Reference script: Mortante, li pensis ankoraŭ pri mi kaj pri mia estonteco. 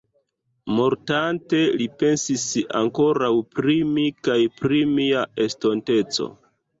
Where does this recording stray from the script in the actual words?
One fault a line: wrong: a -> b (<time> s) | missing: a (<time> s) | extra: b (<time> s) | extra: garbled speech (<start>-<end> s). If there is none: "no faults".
no faults